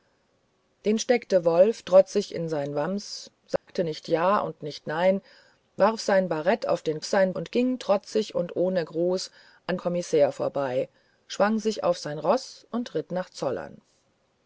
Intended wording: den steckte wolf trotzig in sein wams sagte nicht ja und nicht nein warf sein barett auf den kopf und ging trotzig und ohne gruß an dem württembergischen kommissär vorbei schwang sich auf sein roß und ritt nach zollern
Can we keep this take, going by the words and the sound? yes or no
no